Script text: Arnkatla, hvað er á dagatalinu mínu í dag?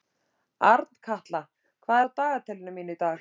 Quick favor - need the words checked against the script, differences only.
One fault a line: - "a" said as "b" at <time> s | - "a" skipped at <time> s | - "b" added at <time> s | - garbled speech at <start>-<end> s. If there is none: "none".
none